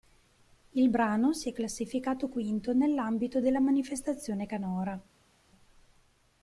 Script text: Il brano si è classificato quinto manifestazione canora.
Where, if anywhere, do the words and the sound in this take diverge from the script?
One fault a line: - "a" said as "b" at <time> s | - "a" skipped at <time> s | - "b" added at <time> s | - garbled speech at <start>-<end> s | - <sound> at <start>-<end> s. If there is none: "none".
- "nell'ambito della" added at 2.7 s